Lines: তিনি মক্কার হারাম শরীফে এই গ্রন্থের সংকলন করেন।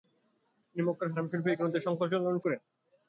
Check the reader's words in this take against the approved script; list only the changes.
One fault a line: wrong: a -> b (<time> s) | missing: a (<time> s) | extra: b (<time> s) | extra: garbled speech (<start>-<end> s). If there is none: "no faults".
no faults